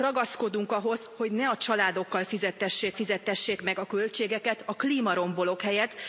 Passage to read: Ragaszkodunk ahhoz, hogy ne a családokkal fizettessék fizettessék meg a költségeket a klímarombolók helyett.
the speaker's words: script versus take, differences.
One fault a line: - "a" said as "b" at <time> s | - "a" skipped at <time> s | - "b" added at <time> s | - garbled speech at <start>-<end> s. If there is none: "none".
none